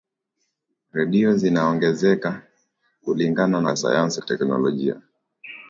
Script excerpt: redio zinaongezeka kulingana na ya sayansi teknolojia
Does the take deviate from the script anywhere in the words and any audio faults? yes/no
no